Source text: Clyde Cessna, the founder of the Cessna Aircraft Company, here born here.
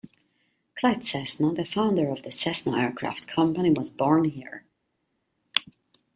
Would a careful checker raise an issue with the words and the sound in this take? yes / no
yes